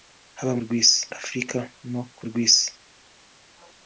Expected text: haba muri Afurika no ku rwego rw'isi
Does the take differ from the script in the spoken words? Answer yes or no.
yes